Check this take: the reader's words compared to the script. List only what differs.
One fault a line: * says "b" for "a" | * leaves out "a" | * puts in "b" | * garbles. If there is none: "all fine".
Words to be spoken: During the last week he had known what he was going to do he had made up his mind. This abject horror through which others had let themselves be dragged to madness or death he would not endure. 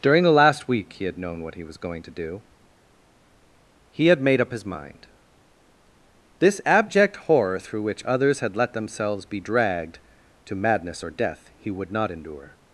all fine